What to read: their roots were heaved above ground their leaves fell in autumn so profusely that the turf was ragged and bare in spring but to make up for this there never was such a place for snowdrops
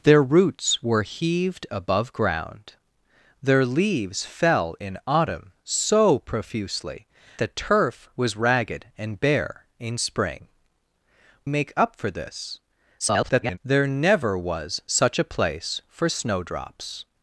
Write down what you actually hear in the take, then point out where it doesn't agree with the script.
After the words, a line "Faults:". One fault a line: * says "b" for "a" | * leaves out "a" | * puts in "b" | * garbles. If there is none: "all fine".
their roots were heaved above ground their leaves fell in autumn so profusely the turf was ragged and bare in spring make up for this [garbled] there never was such a place for snowdrops
Faults:
* leaves out "that"
* leaves out "but to"
* garbles